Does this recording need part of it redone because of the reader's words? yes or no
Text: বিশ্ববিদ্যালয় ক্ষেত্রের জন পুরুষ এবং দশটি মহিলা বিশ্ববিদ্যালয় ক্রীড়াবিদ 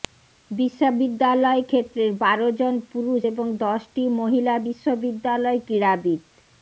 yes